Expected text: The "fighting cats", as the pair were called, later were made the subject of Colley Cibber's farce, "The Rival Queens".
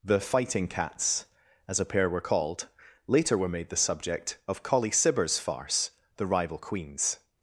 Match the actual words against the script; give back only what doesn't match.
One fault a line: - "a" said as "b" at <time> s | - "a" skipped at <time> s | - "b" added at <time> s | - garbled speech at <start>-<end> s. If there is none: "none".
- "the" said as "a" at 1.8 s